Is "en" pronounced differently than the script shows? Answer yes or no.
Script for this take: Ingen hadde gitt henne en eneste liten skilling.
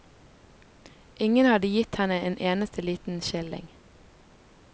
no